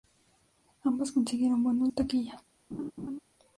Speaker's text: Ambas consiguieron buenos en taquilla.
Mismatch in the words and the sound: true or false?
true